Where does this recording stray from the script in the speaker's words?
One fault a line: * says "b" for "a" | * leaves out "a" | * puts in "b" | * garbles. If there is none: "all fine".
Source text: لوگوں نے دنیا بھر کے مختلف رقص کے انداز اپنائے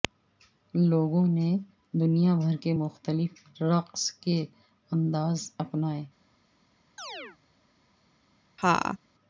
all fine